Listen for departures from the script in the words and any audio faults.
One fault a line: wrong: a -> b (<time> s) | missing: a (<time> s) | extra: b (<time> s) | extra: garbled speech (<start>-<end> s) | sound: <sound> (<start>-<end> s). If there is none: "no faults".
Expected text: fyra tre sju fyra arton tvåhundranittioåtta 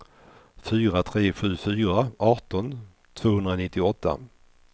no faults